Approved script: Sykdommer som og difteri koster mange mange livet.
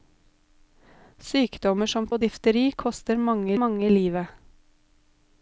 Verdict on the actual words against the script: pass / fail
pass